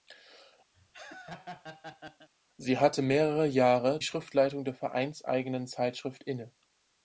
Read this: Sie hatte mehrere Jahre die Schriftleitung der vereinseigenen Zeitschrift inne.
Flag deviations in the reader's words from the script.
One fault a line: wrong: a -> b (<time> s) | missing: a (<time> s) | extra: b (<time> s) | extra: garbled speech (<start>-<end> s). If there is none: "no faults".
missing: die (4.0 s)